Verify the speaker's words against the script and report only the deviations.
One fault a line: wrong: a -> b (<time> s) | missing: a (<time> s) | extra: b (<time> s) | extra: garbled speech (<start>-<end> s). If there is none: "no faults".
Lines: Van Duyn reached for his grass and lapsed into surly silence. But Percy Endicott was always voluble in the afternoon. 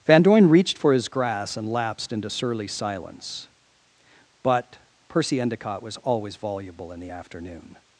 no faults